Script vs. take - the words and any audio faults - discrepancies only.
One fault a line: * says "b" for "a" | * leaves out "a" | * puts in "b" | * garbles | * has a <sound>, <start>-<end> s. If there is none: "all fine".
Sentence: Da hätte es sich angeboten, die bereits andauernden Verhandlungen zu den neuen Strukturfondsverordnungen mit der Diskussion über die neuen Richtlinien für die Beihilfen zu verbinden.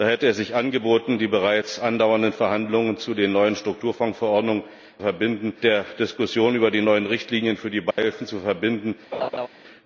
* says "verbinden" for "mit"
* has a dropout, 7.9-8.0 s
* has a laugh, 9.1-9.5 s